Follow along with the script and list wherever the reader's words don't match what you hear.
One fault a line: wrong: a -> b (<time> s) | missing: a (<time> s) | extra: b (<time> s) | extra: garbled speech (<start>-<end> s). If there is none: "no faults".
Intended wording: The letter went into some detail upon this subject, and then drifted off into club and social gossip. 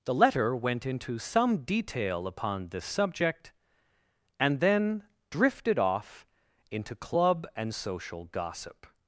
no faults